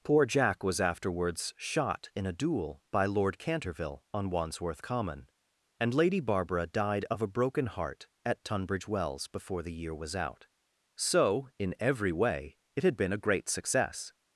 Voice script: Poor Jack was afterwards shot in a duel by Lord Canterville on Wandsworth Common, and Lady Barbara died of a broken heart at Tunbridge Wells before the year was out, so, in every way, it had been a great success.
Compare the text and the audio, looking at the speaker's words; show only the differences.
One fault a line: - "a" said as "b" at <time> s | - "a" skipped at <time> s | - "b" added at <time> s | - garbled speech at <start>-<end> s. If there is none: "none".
none